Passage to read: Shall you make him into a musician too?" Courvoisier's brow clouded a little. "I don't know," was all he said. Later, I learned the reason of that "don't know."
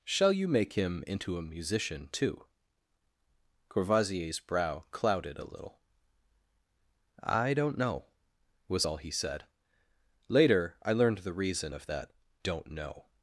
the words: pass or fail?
pass